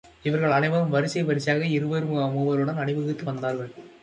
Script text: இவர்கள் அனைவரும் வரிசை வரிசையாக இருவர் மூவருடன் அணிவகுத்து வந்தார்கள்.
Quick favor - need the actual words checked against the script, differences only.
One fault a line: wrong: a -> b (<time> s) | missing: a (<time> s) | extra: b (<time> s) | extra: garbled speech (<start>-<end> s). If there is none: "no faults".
no faults